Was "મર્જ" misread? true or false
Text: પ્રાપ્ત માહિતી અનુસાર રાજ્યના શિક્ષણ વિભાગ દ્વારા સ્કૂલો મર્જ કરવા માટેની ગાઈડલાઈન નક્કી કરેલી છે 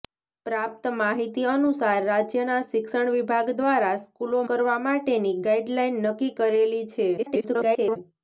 true